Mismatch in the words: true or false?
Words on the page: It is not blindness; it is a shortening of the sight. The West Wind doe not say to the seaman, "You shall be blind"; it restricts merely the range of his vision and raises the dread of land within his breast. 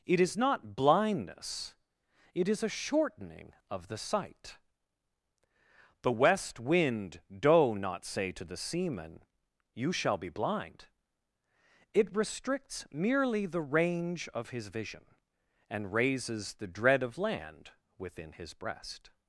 false